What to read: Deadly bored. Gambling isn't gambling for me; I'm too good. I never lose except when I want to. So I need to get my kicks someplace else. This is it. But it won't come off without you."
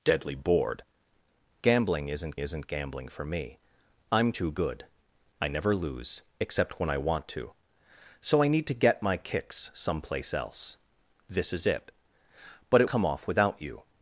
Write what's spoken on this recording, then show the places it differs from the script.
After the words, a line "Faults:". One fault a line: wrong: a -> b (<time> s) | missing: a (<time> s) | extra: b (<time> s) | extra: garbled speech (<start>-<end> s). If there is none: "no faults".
Deadly bored. Gambling isn't isn't gambling for me; I'm too good. I never lose except when I want to. So I need to get my kicks someplace else. This is it. But it come off without you."
Faults:
extra: isn't (2.4 s)
missing: won't (12.9 s)